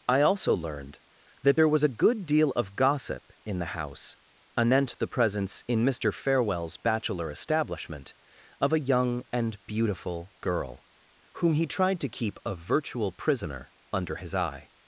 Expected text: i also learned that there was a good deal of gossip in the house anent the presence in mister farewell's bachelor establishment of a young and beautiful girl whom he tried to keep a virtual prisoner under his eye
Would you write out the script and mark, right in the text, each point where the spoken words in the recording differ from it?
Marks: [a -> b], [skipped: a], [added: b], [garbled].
i also learned that there was a good deal of gossip in the house anent the presence in mister farewell's bachelor establishment of a young and beautiful girl whom he tried to keep a virtual prisoner under his eye